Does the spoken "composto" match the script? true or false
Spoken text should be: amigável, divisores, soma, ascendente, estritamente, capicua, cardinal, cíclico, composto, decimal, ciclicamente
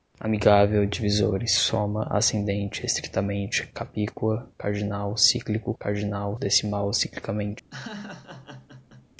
false